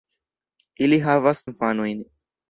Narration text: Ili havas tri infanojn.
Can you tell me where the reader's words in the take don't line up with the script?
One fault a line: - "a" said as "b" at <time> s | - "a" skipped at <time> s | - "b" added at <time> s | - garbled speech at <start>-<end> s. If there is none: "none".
- "tri" skipped at 1.4 s